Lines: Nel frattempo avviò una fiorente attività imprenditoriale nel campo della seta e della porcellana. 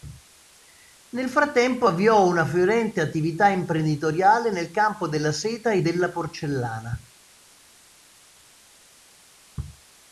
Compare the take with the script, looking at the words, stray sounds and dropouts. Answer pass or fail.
pass